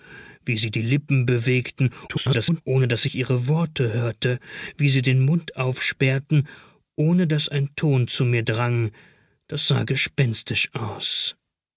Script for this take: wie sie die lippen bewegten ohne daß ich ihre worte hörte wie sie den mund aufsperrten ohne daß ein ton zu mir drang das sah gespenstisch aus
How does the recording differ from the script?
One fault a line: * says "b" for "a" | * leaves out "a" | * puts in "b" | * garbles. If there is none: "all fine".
* garbles